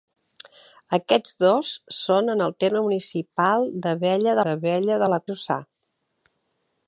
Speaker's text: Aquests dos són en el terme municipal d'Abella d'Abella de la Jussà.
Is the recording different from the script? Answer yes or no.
no